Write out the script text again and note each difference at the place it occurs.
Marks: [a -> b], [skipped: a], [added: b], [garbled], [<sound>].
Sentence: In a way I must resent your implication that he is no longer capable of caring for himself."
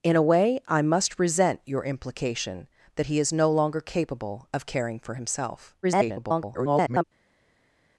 In a way I must resent your implication that he is no longer capable of caring for himself." [garbled]